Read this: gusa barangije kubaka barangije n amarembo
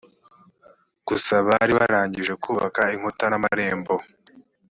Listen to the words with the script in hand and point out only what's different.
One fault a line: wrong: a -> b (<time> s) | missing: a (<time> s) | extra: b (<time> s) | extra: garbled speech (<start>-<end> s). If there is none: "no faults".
extra: bari (1.5 s)
wrong: barangije -> inkuta (3.0 s)